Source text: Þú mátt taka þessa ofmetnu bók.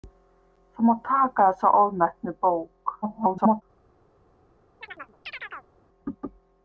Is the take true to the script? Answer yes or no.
no